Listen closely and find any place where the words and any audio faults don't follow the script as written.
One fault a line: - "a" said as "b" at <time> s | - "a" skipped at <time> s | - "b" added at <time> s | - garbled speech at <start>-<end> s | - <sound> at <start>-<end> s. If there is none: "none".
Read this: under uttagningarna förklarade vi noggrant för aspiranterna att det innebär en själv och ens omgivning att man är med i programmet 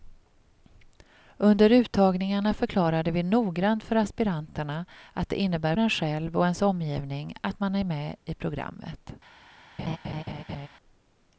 - laugh at 9.8-10.7 s